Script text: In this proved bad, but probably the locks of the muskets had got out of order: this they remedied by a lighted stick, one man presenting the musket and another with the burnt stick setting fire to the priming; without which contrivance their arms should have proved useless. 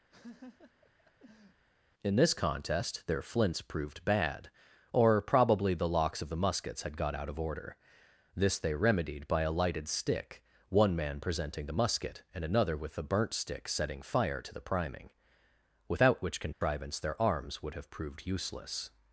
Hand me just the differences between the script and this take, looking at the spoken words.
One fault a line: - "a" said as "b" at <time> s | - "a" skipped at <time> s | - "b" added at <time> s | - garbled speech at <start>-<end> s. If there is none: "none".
- "contest their flints" added at 2.3 s
- "but" said as "or" at 4.9 s
- "should" said as "would" at 17.6 s